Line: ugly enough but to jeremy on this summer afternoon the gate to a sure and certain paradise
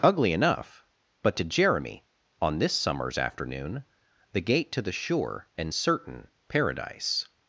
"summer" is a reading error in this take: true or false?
true